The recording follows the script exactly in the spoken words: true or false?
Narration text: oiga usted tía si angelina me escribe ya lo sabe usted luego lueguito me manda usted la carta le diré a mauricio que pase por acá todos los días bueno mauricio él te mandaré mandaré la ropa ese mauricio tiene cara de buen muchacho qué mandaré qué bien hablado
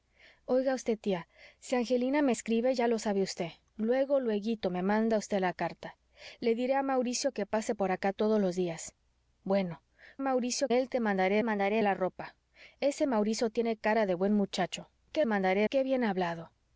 true